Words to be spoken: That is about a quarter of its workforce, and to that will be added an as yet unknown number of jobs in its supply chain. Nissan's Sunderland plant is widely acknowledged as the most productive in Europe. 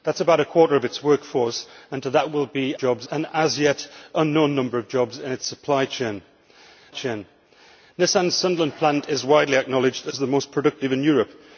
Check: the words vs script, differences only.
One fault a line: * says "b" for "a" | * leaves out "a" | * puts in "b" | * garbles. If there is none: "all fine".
* says "jobs" for "added"
* puts in "chain"